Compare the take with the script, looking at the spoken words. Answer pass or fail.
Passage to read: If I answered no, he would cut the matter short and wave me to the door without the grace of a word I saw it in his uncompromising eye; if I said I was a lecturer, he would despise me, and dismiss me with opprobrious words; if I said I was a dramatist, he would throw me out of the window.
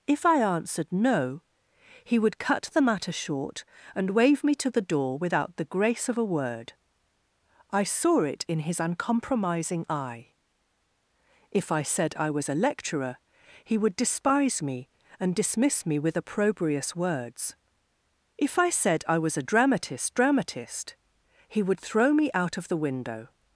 fail